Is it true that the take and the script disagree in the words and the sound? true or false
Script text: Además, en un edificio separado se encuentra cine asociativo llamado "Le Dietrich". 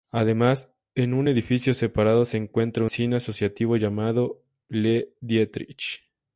false